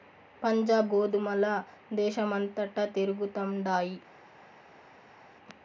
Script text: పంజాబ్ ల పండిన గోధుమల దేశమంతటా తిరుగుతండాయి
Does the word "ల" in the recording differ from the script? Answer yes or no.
yes